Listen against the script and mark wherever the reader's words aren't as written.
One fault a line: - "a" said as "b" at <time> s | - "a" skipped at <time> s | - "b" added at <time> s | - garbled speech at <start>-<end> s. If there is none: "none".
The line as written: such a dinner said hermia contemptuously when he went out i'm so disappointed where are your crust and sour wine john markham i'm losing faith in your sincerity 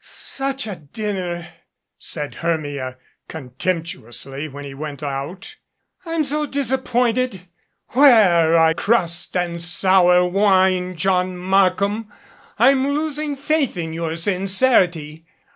- "your" skipped at 8.7 s